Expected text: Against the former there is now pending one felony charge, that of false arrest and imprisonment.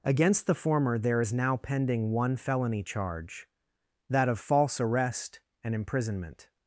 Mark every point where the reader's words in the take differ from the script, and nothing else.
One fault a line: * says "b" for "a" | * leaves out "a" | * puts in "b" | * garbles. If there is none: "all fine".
all fine